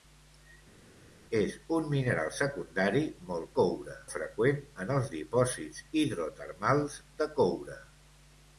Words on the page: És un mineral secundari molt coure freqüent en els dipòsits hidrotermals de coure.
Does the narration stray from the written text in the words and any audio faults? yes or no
no